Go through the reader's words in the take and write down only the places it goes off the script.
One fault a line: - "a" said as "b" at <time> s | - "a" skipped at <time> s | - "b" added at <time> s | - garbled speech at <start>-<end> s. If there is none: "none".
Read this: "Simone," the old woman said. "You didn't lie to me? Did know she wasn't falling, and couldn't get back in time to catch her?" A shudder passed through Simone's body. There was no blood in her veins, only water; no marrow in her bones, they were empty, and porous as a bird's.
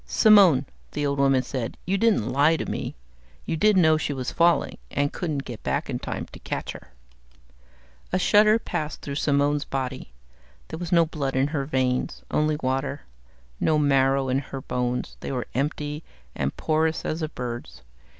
- "You" added at 3.4 s
- "wasn't" said as "was" at 4.1 s